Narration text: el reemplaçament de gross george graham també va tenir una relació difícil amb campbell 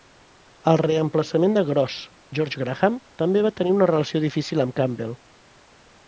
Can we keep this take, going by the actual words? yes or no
yes